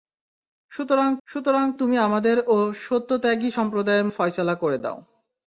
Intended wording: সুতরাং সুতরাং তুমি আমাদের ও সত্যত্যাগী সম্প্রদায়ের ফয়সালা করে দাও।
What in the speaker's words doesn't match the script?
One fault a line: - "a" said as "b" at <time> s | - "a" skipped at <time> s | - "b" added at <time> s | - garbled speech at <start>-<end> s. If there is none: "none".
none